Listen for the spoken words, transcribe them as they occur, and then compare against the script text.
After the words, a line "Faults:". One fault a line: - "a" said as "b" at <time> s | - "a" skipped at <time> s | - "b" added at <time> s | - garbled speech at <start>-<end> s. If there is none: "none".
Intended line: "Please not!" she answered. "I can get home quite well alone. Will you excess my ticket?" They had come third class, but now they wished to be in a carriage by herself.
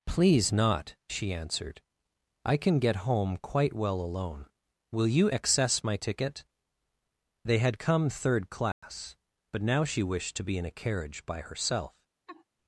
"Please not!" she answered. "I can get home quite well alone. Will you excess my ticket?" They had come third class, but now she wished to be in a carriage by herself.
Faults:
- "they" said as "she" at 9.8 s